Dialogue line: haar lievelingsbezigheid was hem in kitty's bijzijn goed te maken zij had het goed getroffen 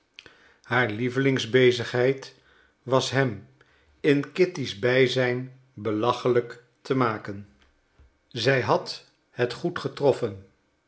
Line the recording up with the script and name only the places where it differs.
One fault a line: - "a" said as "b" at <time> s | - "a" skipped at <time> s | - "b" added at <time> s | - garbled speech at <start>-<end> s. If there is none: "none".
- "goed" said as "belachelijk" at 5.7 s